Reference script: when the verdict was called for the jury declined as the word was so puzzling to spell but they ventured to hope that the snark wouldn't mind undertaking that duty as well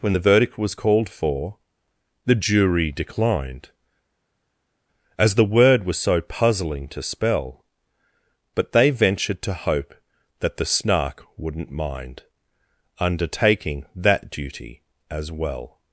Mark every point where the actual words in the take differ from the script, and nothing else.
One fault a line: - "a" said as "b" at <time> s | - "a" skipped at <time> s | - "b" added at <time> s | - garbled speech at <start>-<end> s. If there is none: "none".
none